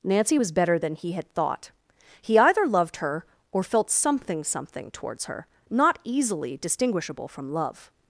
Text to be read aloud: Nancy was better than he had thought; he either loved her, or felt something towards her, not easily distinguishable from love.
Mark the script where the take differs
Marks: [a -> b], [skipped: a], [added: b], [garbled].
Nancy was better than he had thought; he either loved her, or felt something [added: something] towards her, not easily distinguishable from love.